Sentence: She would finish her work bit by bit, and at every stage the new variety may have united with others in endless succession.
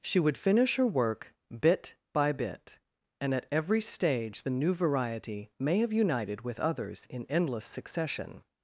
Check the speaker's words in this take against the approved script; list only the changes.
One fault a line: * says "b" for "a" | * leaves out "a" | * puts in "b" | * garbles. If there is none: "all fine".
all fine